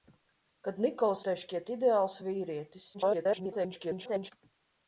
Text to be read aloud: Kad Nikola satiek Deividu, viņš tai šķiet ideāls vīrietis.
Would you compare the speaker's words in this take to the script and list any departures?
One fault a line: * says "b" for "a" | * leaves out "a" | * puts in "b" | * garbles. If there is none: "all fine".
* leaves out "satiek Deividu viņš"
* garbles